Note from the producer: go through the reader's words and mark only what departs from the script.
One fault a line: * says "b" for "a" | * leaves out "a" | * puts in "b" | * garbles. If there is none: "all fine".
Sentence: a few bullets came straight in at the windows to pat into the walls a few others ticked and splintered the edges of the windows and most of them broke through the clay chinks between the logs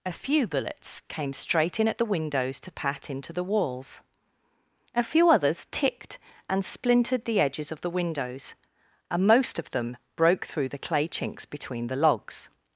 all fine